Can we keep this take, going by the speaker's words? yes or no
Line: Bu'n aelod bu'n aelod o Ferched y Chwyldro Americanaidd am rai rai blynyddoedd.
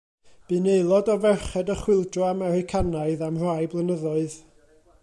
no